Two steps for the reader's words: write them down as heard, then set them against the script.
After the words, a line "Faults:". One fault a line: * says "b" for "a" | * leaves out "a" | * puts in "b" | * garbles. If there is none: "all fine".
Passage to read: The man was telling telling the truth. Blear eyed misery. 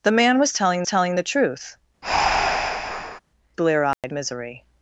The man was telling telling the truth. Blear eyed misery.
Faults:
all fine